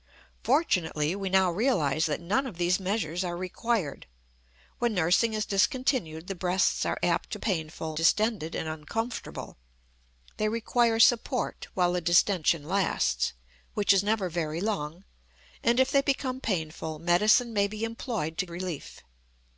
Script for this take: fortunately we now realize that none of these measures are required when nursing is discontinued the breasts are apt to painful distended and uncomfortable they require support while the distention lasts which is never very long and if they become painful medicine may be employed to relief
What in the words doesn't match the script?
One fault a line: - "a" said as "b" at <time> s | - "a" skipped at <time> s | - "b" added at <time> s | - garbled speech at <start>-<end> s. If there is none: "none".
none